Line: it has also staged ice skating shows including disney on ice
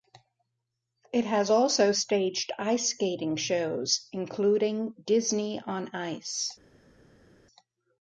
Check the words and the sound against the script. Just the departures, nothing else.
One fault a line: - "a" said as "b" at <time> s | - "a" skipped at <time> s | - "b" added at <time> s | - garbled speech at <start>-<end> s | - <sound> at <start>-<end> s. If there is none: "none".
none